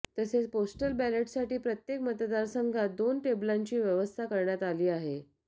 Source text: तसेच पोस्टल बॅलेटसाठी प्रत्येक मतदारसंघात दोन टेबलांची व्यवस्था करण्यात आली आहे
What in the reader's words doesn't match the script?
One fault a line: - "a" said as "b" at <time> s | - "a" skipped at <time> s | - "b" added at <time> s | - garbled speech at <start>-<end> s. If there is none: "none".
none